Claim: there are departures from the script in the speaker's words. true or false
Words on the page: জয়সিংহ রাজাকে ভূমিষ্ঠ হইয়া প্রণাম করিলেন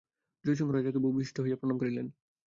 false